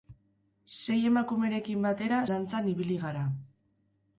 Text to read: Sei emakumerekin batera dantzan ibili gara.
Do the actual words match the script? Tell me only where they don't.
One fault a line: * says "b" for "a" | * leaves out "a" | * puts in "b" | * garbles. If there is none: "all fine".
all fine